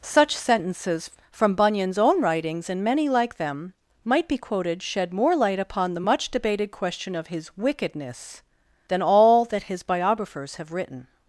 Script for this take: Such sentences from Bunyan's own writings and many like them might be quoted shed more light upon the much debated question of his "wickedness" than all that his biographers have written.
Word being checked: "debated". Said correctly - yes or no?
yes